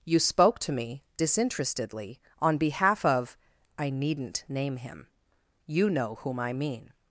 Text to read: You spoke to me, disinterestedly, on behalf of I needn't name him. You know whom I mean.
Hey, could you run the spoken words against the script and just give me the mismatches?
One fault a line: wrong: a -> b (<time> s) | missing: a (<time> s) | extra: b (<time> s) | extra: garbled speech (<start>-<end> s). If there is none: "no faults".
no faults